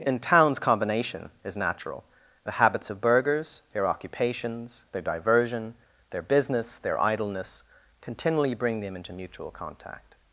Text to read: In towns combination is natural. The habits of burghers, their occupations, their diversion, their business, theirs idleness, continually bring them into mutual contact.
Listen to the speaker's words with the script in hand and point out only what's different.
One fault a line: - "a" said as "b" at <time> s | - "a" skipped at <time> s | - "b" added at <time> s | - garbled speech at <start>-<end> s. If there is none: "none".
- "theirs" said as "their" at 6.8 s